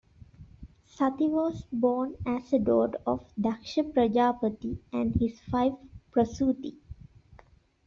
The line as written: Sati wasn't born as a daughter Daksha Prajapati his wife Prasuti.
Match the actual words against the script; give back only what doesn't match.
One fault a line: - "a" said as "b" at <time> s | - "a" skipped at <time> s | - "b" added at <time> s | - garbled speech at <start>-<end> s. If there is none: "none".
- "wasn't" said as "was" at 1.3 s
- "of" added at 3.0 s
- "and" added at 4.9 s